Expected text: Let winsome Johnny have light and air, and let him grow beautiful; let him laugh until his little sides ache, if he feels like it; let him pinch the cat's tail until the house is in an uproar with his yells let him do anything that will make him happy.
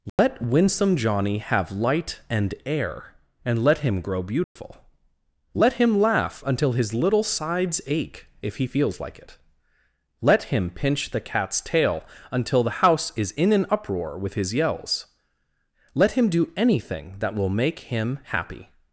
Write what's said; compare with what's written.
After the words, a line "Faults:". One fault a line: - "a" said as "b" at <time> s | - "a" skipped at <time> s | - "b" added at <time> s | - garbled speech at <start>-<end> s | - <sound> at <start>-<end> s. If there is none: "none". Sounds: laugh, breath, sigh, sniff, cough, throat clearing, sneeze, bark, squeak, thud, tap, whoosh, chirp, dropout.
Let winsome Johnny have light and air, and let him grow beautiful; let him laugh until his little sides ache, if he feels like it; let him pinch the cat's tail until the house is in an uproar with his yells let him do anything that will make him happy.
Faults:
- dropout at 0.1-0.2 s
- dropout at 4.4-4.6 s